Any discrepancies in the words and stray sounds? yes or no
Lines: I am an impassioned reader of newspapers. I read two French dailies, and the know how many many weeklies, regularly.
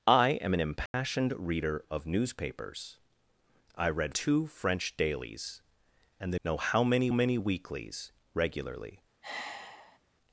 yes